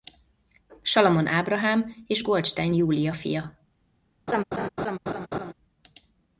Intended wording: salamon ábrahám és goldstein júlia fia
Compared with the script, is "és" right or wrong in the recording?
right